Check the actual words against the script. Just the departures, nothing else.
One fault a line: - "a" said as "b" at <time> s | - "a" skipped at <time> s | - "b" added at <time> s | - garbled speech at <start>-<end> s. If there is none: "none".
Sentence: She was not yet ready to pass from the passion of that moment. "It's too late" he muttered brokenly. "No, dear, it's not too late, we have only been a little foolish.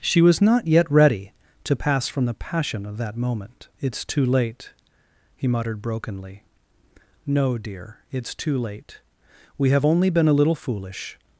- "not" skipped at 8.3 s